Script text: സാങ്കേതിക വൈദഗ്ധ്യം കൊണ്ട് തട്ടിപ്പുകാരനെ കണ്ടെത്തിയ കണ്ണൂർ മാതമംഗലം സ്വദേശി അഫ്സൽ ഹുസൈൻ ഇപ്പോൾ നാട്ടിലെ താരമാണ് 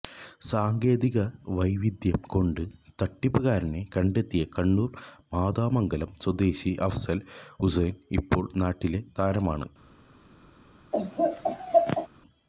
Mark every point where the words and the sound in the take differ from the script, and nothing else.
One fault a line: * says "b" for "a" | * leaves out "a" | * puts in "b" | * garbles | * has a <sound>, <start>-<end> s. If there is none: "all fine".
* has a laugh, 10.9-12.1 s